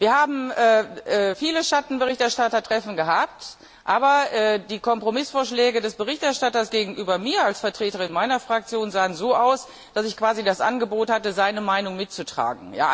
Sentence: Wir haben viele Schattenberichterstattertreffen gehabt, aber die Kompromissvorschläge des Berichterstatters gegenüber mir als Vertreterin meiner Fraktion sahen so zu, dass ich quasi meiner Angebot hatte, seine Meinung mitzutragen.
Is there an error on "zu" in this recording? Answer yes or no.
yes